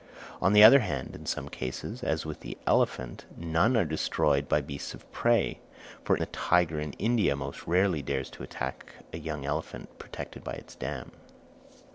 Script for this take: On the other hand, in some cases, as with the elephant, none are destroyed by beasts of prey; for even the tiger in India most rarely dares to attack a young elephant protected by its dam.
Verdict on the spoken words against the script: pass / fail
fail